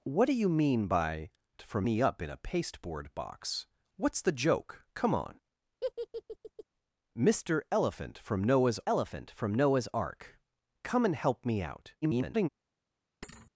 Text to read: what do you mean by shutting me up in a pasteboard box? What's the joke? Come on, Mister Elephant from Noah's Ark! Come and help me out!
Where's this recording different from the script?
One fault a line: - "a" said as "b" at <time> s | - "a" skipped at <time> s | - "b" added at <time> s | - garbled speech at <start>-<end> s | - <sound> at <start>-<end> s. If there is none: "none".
- "shutting" said as "from" at 1.6 s
- laugh at 5.8-6.6 s
- "Elephant from Noah's" added at 8.9 s
- garbled speech at 12.0-12.5 s
- thud at 13.2-13.5 s